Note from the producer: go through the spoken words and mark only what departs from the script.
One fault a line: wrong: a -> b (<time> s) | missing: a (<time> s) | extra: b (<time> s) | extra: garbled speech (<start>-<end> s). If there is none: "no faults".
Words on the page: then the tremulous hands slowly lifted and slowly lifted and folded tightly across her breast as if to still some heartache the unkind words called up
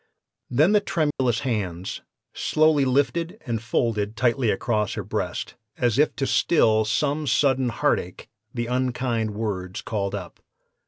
missing: slowly lifted and (3.6 s)
extra: sudden (7.3 s)